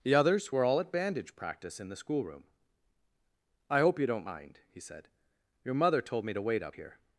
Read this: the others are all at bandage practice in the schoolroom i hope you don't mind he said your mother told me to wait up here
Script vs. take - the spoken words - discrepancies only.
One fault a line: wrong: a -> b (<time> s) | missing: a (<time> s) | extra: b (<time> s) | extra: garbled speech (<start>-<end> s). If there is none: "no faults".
wrong: are -> were (0.5 s)